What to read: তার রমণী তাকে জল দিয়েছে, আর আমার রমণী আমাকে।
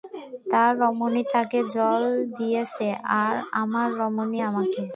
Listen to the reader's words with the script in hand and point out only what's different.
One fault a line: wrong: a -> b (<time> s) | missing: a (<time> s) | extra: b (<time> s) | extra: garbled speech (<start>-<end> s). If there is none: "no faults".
no faults